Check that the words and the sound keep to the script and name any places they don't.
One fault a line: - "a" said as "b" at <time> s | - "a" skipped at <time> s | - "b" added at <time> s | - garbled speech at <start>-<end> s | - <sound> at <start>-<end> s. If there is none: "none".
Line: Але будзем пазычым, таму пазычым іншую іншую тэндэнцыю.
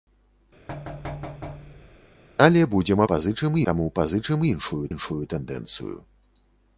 - thud at 0.7-2.1 s